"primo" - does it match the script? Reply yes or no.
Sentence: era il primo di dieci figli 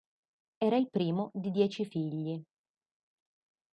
yes